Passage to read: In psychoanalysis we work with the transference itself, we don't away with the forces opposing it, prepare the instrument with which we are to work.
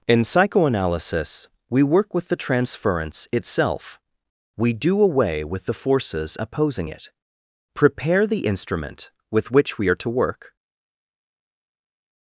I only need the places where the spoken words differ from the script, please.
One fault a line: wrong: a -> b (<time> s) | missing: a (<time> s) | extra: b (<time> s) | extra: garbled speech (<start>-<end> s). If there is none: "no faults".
wrong: don't -> do (4.7 s)